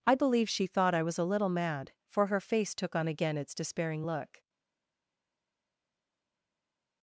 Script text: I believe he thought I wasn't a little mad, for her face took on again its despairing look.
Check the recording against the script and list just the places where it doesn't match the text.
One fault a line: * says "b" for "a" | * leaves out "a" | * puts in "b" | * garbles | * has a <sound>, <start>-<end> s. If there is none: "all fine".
* says "she" for "he"
* says "was" for "wasn't"